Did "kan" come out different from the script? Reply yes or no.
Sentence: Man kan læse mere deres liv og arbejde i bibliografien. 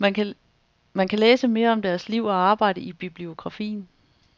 no